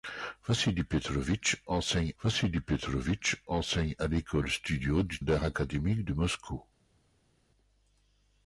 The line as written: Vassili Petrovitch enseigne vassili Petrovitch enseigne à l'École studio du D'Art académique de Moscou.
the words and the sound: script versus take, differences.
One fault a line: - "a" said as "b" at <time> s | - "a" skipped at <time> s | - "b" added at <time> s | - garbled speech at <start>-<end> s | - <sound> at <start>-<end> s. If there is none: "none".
none